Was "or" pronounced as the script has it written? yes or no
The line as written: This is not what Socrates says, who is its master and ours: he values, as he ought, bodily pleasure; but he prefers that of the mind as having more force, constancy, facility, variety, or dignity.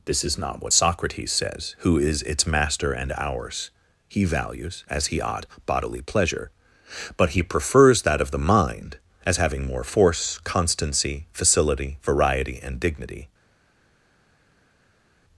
no